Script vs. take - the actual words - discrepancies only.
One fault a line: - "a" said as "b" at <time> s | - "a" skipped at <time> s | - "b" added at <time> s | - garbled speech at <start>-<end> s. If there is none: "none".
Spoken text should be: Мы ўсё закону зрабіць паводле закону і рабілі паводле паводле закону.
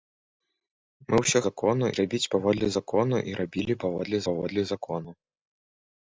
none